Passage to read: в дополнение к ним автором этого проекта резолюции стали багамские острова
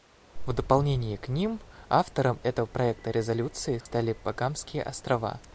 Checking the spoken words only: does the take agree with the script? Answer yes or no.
yes